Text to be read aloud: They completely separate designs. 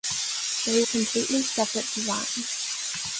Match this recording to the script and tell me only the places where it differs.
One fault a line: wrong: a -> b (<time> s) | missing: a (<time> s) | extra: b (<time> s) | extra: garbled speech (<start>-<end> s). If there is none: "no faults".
no faults